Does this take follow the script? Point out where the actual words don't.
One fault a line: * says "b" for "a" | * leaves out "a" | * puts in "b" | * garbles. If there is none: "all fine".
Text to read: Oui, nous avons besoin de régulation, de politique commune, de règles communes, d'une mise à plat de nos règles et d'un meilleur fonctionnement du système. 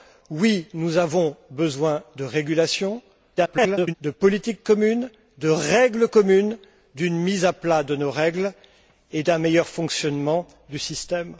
* garbles